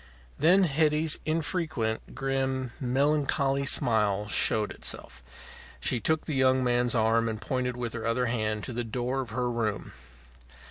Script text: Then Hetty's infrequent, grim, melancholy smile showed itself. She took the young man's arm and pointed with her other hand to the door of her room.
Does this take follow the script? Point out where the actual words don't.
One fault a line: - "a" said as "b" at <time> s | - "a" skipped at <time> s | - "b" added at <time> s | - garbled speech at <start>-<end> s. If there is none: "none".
none